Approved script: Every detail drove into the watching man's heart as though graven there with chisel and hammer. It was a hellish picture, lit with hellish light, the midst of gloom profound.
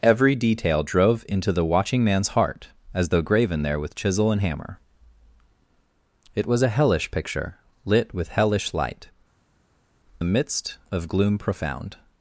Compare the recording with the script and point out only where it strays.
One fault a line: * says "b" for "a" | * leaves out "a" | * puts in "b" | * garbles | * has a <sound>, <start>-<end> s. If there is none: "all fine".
all fine